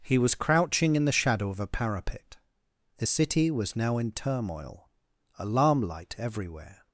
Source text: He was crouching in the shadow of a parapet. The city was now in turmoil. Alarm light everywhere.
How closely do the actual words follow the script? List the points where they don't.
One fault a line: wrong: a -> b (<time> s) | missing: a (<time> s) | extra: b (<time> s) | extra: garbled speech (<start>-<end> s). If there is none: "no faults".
no faults